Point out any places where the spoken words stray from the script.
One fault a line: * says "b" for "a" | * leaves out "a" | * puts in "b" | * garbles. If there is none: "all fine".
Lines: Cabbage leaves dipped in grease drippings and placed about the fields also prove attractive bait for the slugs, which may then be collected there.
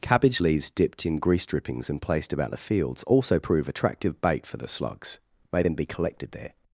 * leaves out "which"